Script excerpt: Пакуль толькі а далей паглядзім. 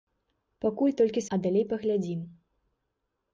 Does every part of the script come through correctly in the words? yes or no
yes